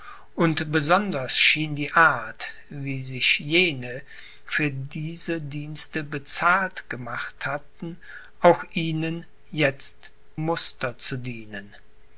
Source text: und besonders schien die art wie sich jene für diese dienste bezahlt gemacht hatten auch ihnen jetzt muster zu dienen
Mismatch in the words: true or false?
false